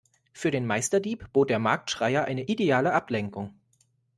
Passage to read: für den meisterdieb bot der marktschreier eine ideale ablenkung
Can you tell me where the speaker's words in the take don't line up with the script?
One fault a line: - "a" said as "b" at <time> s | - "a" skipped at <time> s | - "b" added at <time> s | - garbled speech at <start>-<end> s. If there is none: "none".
none